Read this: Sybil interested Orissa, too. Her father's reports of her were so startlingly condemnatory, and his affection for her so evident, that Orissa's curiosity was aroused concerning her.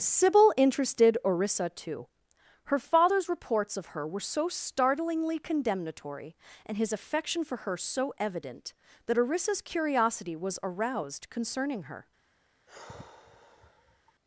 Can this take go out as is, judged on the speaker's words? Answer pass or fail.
pass